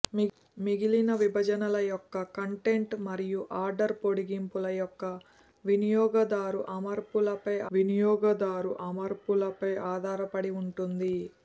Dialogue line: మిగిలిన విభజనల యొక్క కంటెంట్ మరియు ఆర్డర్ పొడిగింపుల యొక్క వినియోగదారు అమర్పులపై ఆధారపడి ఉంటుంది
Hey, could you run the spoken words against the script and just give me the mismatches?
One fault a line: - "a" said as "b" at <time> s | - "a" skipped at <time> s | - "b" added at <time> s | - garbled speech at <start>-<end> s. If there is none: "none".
- "వినియోగదారు అమర్పులపై" added at 7.7 s